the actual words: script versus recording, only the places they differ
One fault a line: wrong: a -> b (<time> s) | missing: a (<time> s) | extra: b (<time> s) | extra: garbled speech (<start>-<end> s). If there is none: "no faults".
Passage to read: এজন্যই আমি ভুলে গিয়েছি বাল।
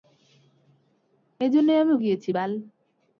missing: ভুলে (1.9 s)